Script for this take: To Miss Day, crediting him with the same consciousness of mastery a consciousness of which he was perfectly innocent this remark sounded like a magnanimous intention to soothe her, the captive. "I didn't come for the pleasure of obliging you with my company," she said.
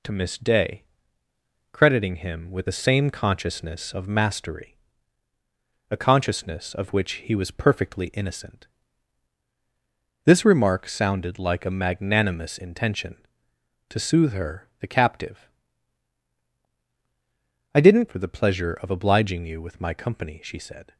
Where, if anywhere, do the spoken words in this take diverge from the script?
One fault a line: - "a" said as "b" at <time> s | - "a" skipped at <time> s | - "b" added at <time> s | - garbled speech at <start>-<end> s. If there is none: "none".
- "come" skipped at 18.1 s